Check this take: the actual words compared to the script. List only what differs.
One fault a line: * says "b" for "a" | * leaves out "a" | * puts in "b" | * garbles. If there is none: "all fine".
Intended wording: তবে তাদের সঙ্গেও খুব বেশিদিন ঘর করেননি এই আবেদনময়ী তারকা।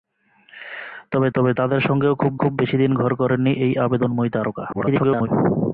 * puts in "তবে"
* puts in "খুব"
* garbles